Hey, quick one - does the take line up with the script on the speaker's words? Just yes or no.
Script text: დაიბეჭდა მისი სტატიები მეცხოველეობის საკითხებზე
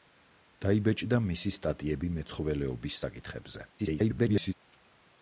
no